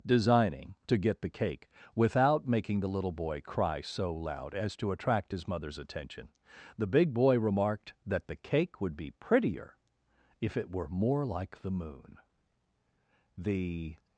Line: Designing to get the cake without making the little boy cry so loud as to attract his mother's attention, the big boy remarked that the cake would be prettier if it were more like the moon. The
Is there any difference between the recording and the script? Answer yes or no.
no